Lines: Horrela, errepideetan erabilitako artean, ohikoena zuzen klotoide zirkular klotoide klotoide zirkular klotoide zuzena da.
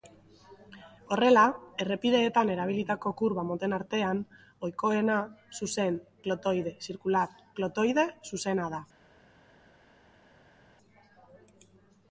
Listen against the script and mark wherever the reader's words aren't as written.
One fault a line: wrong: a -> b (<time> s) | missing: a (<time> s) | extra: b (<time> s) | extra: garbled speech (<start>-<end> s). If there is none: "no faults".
extra: kurba moten (3.2 s)
missing: klotoide zirkular klotoide (8.1 s)